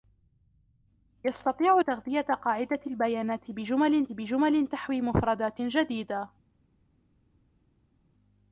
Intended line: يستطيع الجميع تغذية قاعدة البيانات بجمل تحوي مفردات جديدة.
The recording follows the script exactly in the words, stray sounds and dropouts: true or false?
false